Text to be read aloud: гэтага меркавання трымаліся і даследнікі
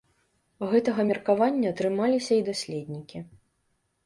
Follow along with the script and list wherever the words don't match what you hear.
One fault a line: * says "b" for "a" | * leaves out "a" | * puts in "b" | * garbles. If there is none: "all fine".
all fine